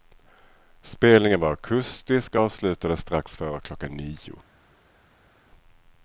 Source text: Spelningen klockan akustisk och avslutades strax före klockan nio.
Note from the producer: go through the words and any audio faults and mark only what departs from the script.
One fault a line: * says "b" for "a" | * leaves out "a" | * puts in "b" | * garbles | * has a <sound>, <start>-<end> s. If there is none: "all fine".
* says "var" for "klockan"